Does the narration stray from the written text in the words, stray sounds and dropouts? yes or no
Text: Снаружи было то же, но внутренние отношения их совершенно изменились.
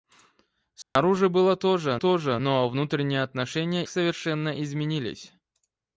yes